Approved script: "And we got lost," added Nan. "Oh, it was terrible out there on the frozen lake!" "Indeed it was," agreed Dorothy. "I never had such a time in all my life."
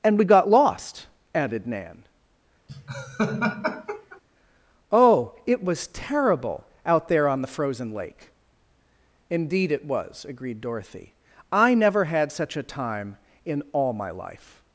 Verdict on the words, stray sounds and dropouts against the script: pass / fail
fail